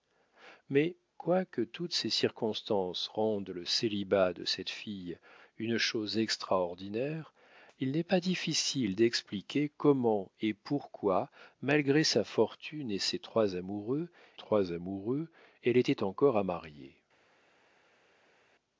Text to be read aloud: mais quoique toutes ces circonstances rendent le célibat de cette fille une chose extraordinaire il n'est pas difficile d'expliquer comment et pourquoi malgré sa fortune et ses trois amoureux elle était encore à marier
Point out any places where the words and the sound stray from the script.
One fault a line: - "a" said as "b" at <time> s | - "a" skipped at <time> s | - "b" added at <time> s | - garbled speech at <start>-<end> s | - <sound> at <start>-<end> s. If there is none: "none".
- "trois amoureux" added at 14.3 s